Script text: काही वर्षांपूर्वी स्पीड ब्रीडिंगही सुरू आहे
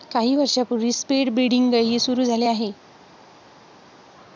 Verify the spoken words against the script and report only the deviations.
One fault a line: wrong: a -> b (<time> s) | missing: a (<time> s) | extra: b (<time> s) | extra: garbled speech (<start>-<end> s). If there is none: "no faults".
extra: झाले (2.2 s)